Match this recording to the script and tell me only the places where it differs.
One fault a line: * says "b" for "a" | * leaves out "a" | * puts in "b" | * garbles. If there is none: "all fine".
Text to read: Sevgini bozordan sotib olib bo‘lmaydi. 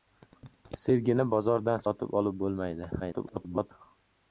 * garbles